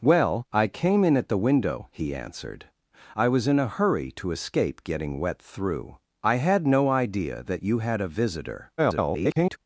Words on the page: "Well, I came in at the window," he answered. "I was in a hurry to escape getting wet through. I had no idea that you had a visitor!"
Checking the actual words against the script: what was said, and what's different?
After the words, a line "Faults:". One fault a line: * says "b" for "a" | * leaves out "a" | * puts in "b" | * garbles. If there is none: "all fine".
"Well, I came in at the window," he answered. "I was in a hurry to escape getting wet through. I had no idea that you had a visitor!" [garbled]
Faults:
* garbles